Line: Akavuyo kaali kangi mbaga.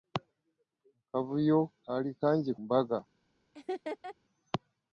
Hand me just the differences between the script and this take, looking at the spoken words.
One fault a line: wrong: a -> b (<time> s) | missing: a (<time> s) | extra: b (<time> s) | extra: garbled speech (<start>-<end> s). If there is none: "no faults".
no faults